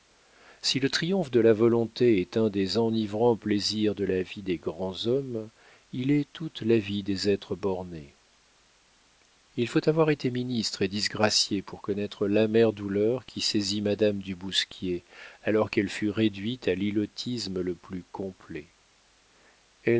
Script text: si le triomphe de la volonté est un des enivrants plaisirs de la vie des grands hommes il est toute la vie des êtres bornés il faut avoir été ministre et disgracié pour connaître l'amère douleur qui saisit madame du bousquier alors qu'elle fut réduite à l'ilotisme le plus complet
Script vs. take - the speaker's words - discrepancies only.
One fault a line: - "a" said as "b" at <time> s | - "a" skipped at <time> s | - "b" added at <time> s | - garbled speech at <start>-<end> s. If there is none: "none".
none